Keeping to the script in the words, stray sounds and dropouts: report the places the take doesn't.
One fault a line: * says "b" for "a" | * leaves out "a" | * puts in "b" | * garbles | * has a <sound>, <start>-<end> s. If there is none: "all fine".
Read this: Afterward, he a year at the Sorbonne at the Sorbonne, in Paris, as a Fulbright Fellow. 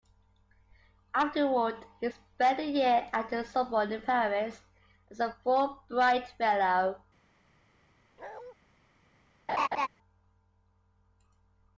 * puts in "spent"
* leaves out "at the Sorbonne"
* has a bark, 8.2-8.5 s
* has a laugh, 9.5-9.9 s